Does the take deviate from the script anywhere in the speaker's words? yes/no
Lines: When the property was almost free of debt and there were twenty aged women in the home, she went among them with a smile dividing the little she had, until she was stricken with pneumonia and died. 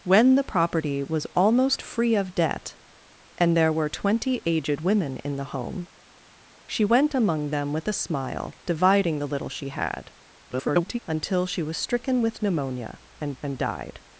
yes